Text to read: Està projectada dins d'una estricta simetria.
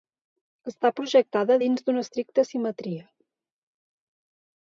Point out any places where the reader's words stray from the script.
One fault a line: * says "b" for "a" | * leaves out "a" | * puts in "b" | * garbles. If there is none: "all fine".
all fine